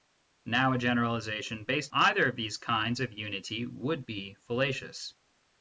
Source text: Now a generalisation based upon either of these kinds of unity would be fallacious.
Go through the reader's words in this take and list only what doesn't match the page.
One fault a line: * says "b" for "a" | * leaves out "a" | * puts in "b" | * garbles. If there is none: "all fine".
* leaves out "upon"